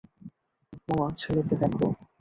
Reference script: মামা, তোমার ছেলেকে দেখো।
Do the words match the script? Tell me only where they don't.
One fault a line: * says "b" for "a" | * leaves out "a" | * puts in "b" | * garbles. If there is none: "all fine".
* leaves out "তোমার"